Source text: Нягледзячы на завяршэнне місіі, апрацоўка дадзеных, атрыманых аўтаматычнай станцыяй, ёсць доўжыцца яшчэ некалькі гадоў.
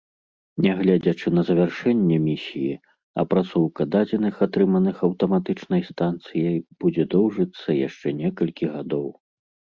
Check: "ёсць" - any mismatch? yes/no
yes